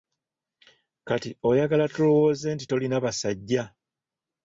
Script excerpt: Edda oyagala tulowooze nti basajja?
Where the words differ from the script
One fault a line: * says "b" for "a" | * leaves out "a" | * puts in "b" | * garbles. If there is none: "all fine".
* says "Kati" for "Edda"
* puts in "tolina"